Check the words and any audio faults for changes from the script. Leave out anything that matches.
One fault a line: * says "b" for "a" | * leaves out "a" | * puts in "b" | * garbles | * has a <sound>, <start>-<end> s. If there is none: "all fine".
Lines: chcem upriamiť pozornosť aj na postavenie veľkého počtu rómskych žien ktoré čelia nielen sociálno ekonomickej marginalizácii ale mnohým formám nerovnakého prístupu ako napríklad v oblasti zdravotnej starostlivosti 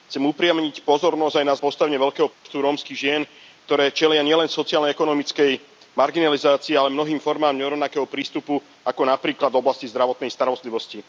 * has a dropout, 2.3-2.5 s